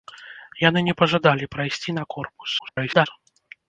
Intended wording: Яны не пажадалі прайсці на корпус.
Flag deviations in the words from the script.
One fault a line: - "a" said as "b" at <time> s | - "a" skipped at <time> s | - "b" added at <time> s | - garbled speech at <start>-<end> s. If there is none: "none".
- garbled speech at 2.6-3.1 s